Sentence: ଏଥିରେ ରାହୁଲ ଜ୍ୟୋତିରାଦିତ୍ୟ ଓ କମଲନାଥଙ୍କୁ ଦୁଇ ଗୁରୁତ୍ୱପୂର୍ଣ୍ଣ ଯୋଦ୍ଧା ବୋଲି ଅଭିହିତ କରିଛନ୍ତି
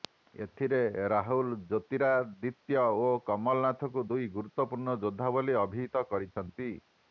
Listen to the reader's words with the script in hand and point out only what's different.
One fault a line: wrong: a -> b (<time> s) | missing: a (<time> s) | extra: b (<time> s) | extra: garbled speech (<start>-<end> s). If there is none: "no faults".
no faults